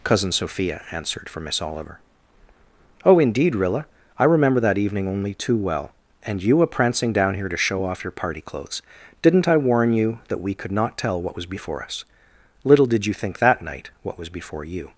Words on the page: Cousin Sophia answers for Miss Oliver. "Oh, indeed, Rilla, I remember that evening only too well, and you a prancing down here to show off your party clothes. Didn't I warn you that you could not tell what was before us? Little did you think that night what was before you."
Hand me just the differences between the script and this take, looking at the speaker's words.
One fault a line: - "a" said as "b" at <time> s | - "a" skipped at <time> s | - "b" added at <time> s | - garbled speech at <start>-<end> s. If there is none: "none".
- "answers" said as "answered" at 0.9 s
- "you" said as "we" at 10.4 s